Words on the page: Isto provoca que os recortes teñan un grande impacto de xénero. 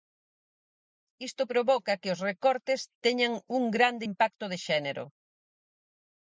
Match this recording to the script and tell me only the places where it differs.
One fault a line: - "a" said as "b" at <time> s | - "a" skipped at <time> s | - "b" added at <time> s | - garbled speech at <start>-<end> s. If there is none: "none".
none